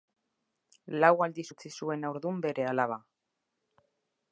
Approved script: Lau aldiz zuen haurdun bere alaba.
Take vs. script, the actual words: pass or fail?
fail